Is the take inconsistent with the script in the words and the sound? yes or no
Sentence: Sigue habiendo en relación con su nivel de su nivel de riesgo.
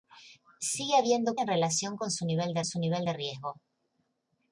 no